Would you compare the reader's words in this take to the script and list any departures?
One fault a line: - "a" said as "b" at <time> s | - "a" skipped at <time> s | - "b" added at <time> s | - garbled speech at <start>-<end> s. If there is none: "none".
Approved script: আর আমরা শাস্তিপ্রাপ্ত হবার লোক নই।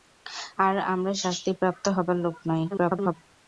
- garbled speech at 2.7-3.1 s